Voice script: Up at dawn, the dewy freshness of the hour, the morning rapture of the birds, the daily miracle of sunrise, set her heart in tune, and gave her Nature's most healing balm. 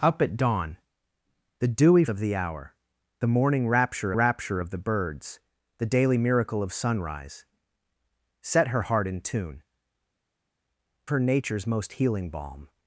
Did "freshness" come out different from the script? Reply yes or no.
yes